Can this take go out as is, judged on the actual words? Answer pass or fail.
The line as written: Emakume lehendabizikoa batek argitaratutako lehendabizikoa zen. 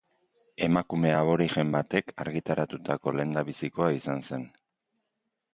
fail